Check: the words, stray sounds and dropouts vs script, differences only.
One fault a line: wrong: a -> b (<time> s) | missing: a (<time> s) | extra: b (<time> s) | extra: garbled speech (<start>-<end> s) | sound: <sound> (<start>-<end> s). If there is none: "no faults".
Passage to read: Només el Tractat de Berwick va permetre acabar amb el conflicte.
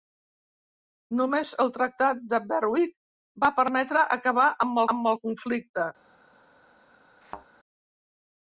extra: amb (5.0 s)
sound: thud (7.2-7.5 s)